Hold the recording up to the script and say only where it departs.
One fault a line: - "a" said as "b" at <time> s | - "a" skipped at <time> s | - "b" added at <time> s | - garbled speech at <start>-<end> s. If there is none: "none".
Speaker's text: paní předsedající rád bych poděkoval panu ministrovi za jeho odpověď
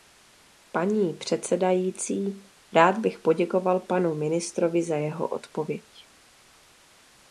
none